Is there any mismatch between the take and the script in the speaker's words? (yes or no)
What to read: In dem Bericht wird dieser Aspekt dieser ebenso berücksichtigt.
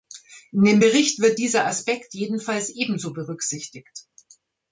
yes